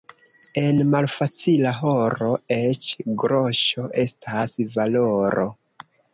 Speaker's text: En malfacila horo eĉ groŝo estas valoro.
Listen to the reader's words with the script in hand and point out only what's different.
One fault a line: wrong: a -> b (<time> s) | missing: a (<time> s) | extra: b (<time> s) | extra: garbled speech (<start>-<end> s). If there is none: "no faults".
no faults